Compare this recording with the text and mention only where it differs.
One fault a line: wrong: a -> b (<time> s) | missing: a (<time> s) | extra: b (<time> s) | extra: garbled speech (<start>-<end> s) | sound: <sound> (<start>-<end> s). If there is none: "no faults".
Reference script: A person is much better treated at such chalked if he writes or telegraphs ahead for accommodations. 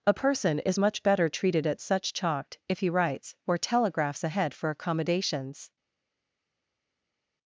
no faults